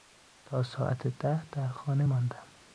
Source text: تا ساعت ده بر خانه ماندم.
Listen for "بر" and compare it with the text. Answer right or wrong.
wrong